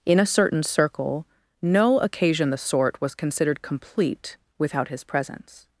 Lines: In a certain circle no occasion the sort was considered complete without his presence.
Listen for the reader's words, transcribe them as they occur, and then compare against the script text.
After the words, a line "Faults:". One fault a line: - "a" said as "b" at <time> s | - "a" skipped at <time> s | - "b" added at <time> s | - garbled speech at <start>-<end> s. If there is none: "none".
In a certain circle no occasion the sort was considered complete without his presence.
Faults:
none